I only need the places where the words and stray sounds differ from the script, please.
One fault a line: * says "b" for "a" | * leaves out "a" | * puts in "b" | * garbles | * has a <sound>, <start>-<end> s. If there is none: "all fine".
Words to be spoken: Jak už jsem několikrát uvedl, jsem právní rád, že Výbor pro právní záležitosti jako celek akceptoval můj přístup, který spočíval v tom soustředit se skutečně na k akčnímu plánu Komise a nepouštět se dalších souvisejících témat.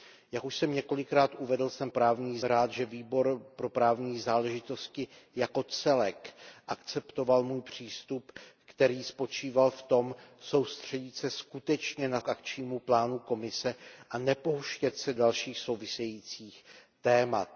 all fine